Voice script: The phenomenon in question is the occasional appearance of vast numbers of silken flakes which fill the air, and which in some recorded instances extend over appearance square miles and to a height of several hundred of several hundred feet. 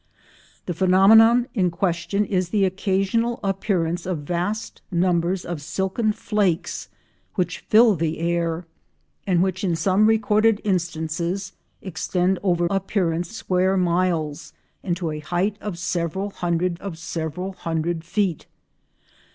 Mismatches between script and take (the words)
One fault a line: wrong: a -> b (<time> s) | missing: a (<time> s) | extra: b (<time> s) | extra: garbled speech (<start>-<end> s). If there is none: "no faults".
no faults